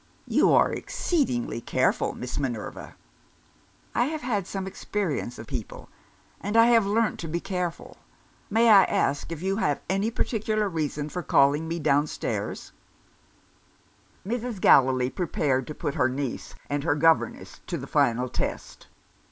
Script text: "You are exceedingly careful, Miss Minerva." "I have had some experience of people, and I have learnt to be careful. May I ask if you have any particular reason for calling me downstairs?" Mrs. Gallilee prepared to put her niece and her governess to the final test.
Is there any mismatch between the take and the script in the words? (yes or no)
no